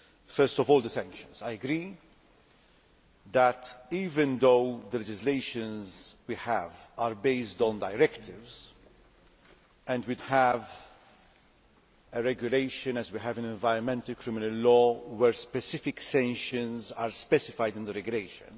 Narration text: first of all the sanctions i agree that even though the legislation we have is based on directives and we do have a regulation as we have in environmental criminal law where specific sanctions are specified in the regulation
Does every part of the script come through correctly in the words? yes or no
yes